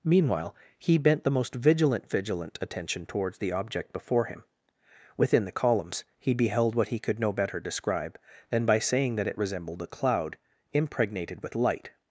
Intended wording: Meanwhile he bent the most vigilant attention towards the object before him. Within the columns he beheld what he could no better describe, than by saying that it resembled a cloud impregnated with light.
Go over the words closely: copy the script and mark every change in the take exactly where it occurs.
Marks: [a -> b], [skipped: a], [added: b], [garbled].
Meanwhile he bent the most vigilant [added: vigilant] attention towards the object before him. Within the columns he beheld what he could no better describe, than by saying that it resembled a cloud impregnated with light.